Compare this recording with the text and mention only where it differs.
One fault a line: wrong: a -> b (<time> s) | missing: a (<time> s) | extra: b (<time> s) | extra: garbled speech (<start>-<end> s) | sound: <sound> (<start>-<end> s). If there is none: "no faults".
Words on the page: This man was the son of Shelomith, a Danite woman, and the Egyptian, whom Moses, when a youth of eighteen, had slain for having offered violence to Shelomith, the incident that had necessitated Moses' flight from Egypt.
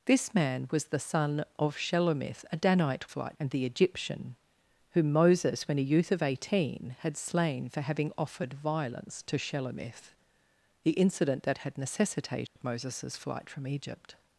wrong: woman -> flight (3.1 s)
sound: dropout (12.5-12.6 s)